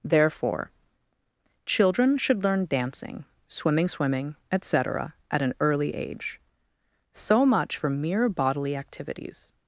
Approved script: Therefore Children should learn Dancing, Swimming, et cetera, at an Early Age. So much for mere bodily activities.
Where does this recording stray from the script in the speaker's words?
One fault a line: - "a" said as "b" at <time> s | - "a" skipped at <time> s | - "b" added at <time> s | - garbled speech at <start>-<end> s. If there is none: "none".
- "Swimming" added at 3.9 s